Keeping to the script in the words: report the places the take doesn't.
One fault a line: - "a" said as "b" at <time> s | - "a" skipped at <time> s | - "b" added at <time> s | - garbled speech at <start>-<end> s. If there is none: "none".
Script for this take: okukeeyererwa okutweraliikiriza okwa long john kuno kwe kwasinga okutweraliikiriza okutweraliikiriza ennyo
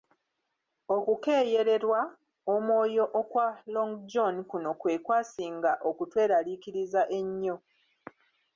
- "okutweraliikiriza" said as "omwoyo" at 2.5 s
- "okutweraliikiriza" skipped at 7.0 s